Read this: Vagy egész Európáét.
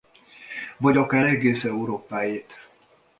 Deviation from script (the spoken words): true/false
true